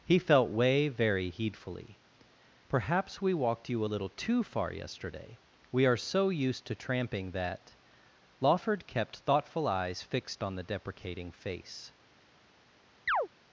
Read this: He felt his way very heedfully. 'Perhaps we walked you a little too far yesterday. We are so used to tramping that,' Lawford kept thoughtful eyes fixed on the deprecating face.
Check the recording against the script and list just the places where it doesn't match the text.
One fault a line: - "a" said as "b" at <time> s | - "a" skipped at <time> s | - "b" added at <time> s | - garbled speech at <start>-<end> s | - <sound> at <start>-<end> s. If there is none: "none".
- "his" skipped at 0.5 s
- chirp at 13.1-13.3 s